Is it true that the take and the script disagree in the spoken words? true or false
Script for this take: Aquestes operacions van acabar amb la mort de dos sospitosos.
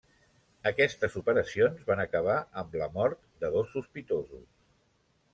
false